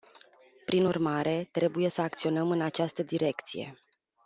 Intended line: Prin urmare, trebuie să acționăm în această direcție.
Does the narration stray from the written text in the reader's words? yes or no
no